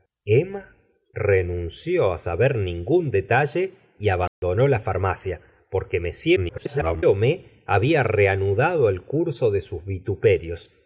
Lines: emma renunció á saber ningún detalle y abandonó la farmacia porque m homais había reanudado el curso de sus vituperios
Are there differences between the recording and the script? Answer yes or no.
yes